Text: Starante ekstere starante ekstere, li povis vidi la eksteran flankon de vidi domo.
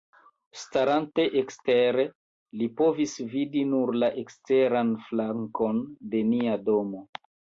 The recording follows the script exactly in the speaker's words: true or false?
false